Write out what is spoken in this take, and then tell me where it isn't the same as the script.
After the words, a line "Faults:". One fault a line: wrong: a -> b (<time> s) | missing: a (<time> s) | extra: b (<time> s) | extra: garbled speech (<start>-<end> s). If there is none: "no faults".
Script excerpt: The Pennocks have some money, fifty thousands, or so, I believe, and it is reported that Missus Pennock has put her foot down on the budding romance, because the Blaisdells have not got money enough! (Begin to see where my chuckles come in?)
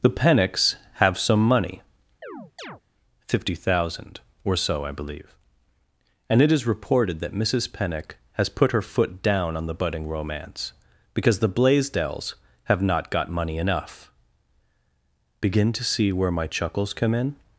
The Pennocks have some money, fifty thousand, or so, I believe, and it is reported that Missus Pennock has put her foot down on the budding romance, because the Blaisdells have not got money enough! (Begin to see where my chuckles come in?)
Faults:
wrong: thousands -> thousand (3.5 s)